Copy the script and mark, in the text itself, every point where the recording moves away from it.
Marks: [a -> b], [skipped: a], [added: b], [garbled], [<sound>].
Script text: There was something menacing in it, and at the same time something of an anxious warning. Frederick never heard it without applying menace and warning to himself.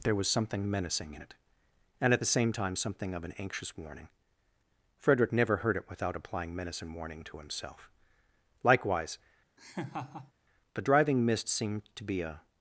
There was something menacing in it, and at the same time something of an anxious warning. Frederick never heard it without applying menace and warning to himself. [added: Likewise the driving mist seemed to be a] [laugh]